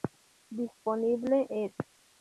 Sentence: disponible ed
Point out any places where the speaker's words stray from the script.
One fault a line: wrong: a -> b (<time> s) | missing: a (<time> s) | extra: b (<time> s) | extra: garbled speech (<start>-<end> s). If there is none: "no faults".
no faults